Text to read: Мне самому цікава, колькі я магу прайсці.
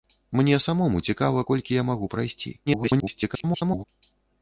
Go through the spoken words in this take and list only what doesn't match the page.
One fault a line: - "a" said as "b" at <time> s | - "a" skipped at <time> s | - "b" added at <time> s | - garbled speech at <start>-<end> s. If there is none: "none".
- garbled speech at 2.7-3.8 s